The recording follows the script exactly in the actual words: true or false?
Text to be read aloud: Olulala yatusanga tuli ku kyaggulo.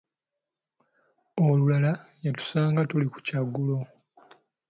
true